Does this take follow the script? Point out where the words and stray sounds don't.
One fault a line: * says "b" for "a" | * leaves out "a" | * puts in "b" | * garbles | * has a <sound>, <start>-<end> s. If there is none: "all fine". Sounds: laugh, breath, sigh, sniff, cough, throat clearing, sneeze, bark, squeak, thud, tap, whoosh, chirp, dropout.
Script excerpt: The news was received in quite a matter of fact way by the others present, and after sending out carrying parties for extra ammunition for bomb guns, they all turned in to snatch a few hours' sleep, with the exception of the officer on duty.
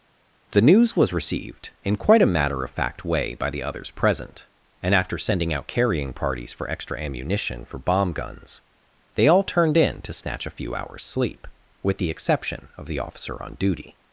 all fine